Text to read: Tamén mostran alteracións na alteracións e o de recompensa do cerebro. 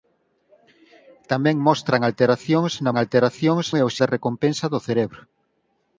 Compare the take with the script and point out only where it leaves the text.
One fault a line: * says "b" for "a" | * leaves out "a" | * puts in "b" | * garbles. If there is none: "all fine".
all fine